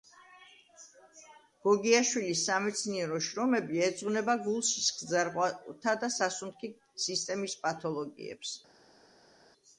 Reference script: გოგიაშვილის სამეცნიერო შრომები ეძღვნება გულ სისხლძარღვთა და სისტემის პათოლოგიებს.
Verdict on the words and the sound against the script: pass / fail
fail